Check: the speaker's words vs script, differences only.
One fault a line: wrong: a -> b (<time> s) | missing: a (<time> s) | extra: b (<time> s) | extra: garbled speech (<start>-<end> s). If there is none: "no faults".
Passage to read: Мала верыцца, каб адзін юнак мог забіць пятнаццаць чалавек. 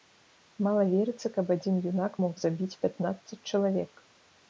no faults